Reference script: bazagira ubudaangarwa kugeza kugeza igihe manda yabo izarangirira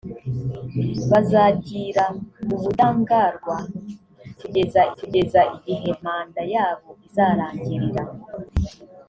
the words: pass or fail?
pass